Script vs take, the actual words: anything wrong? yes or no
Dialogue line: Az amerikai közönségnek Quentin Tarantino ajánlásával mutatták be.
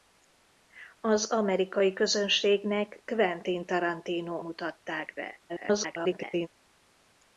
yes